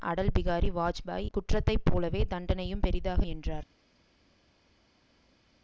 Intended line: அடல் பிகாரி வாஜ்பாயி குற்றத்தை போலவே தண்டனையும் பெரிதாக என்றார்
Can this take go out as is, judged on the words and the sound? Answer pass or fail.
pass